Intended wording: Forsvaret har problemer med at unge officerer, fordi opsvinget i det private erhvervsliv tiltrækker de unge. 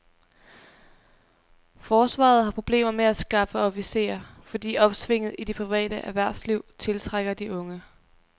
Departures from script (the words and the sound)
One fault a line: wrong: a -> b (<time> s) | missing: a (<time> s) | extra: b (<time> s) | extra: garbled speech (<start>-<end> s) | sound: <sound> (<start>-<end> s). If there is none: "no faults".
wrong: unge -> skaffe (3.1 s)